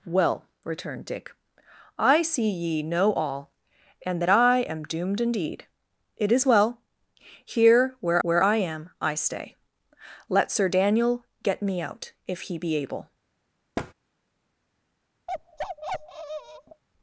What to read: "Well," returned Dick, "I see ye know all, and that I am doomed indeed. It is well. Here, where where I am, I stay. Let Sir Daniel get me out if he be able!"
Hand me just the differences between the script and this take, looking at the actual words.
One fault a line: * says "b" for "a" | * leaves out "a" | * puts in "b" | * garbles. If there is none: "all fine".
all fine